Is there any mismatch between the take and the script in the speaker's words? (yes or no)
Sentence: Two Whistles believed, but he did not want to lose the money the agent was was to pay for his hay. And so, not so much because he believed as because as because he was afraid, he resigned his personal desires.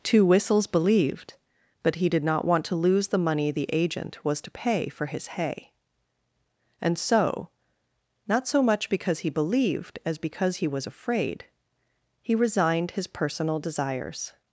yes